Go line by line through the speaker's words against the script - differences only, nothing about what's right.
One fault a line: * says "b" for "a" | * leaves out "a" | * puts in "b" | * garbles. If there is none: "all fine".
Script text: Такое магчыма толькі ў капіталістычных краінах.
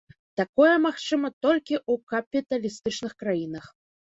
all fine